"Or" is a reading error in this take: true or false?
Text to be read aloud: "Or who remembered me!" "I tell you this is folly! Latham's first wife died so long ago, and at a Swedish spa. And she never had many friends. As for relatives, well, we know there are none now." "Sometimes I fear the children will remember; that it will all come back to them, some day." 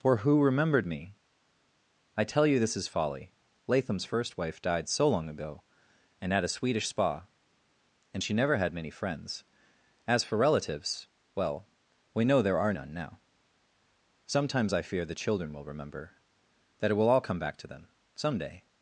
true